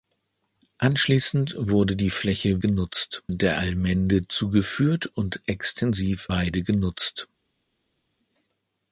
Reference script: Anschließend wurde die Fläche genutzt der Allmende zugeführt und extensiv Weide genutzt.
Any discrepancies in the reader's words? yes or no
no